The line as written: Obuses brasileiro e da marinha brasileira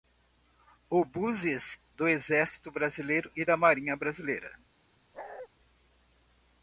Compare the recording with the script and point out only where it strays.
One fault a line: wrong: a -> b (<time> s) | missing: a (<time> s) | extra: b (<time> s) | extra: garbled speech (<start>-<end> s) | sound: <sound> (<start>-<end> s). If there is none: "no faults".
extra: do exército (2.0 s)
sound: bark (5.1-5.5 s)